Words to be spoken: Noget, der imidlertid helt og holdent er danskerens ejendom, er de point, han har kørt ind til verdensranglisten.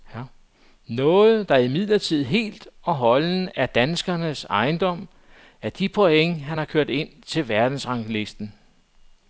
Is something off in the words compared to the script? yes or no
no